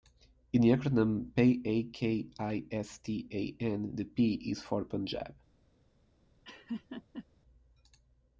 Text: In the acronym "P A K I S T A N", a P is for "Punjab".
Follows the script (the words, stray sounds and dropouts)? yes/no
no